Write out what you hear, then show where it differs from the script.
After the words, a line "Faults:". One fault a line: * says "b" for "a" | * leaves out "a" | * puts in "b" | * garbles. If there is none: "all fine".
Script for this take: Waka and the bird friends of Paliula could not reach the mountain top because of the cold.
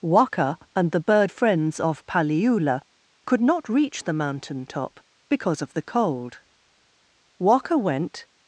Waka and the bird friends of Paliula could not reach the mountain top because of the cold. Waka went
Faults:
* puts in "Waka went"